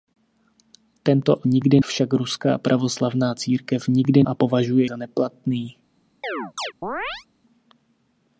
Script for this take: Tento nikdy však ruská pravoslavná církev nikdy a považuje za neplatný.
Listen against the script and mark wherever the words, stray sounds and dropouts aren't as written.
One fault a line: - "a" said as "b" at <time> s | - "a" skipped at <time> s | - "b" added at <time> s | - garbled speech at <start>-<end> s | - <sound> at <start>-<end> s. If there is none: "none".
- chirp at 6.2-7.3 s